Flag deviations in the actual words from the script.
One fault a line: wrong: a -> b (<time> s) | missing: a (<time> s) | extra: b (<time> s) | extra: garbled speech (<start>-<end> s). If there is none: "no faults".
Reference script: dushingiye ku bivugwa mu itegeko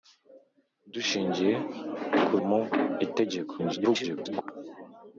missing: bivugwa (2.3 s)
extra: garbled speech (3.6-4.4 s)